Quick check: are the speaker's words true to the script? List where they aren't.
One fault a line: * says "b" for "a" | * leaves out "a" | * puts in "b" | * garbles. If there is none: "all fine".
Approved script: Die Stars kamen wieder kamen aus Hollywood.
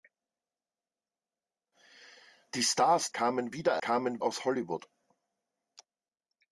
all fine